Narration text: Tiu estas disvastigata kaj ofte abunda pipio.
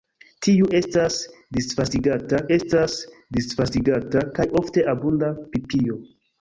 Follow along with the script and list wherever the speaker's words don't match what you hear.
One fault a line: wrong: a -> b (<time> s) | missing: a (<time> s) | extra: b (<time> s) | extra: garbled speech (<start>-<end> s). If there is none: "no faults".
extra: estas disvastigata (2.5 s)